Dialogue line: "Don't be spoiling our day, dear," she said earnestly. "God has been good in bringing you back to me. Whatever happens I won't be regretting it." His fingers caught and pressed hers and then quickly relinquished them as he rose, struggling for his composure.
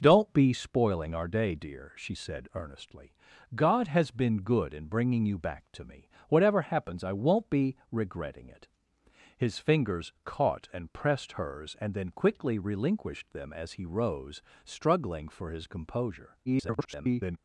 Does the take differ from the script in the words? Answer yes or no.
yes